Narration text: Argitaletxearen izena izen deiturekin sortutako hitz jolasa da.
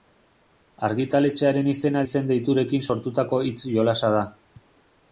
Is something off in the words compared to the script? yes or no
no